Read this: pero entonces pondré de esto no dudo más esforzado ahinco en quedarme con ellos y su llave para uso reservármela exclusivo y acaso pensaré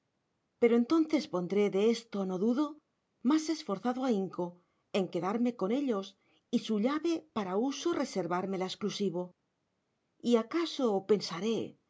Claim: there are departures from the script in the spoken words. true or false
false